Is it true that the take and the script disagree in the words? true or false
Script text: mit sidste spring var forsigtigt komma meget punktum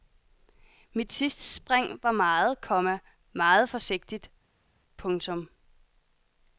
true